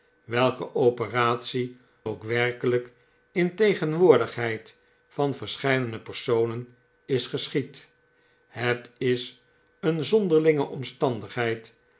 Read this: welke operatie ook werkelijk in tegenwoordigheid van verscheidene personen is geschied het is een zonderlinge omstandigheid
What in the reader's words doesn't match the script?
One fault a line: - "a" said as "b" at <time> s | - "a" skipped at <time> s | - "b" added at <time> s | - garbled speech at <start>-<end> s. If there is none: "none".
none